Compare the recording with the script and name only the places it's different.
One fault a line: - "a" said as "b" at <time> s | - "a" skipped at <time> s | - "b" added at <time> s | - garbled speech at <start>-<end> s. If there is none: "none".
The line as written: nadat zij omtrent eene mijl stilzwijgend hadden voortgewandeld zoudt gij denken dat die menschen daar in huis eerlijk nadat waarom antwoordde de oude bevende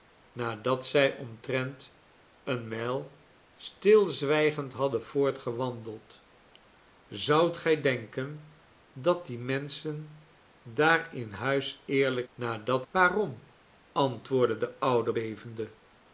none